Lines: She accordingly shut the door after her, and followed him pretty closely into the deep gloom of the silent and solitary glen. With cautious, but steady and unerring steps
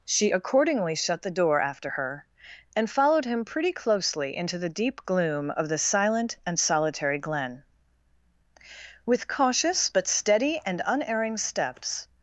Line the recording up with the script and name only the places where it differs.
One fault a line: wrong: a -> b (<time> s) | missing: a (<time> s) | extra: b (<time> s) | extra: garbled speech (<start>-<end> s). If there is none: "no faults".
no faults